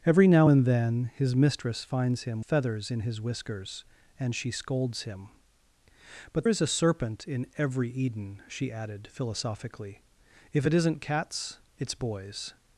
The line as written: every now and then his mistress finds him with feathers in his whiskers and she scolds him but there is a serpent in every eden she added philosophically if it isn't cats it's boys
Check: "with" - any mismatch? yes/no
yes